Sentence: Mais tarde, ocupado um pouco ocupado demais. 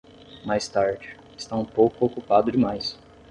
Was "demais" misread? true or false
false